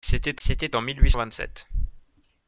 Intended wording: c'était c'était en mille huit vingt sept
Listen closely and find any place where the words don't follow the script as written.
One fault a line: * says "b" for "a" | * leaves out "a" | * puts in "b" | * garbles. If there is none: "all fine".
all fine